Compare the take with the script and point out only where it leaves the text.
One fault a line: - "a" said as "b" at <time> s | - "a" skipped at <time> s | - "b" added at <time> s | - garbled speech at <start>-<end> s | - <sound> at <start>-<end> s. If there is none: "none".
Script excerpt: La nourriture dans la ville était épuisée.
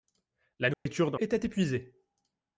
- dropout at 0.7-0.9 s
- "la ville" skipped at 1.2 s